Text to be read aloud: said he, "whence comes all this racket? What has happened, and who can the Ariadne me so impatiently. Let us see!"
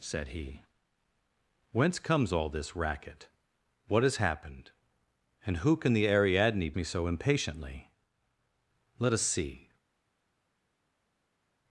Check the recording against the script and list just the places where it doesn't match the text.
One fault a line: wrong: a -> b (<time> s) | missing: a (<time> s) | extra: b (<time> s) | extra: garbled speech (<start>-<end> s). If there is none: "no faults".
no faults